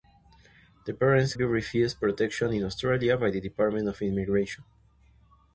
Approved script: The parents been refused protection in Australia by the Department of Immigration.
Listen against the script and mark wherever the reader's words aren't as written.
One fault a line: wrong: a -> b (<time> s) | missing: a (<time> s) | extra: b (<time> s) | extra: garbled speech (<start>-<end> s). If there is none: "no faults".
no faults